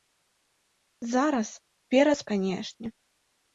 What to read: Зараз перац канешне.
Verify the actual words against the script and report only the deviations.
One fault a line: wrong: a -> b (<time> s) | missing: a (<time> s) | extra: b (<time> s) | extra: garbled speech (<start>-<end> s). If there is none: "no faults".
no faults